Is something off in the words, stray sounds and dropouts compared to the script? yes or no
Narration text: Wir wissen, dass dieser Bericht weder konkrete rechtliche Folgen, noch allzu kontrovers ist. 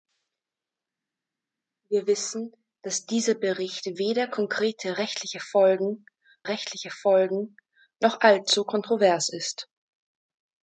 yes